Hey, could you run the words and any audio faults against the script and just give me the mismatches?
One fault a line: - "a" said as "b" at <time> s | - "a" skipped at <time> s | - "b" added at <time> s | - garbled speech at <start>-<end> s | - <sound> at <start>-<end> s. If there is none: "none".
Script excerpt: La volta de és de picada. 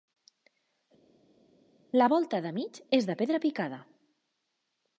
- "mig" added at 2.6 s
- "pedra" added at 3.2 s